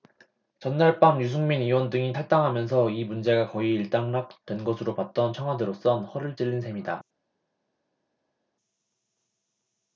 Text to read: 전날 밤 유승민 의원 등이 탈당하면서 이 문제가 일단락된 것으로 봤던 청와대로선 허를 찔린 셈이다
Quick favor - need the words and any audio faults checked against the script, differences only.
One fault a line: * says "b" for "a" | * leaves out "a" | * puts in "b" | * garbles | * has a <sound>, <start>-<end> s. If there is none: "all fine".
* puts in "거의"